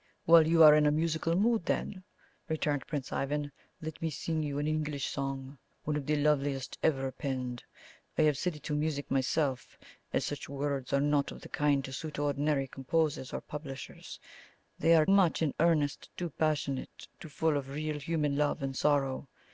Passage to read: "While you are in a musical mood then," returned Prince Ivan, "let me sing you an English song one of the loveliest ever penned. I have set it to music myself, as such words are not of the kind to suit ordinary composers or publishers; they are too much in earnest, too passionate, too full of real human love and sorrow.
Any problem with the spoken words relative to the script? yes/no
yes